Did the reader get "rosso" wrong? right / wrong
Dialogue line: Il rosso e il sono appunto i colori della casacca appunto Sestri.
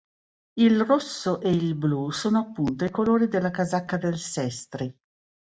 right